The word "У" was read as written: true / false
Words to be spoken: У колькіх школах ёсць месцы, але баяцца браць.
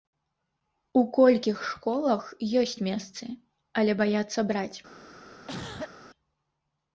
true